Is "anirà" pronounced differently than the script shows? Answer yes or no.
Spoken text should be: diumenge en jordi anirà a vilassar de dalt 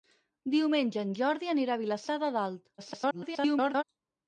no